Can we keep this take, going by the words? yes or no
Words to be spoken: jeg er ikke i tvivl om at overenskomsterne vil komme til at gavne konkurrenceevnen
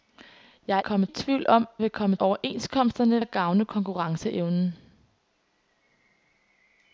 no